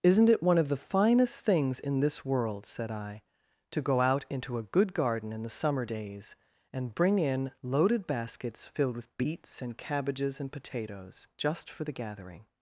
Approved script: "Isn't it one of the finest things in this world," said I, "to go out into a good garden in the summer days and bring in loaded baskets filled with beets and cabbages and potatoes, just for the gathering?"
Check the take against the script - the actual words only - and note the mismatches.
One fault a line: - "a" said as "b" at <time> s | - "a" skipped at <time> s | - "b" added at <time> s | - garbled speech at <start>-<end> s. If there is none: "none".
none